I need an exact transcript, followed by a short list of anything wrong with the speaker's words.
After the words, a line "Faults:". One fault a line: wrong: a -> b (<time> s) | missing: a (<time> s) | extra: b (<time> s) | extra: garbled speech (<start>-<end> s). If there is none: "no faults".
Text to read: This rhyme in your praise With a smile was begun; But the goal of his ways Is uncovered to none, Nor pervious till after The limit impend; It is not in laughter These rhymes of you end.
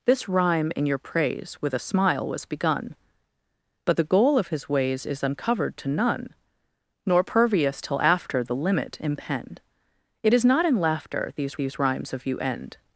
This rhyme in your praise With a smile was begun; But the goal of his ways Is uncovered to none, Nor pervious till after The limit impend; It is not in laughter These These rhymes of you end.
Faults:
extra: These (11.6 s)